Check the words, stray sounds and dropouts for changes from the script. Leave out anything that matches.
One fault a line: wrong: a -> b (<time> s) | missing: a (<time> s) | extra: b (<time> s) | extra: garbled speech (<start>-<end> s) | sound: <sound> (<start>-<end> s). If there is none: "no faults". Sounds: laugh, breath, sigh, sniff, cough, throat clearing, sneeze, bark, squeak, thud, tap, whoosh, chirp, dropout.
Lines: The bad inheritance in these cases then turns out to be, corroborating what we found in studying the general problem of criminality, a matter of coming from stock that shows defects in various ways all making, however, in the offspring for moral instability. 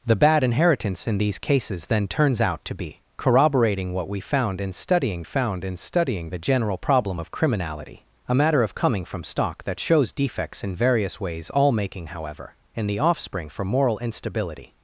extra: found in studying (5.2 s)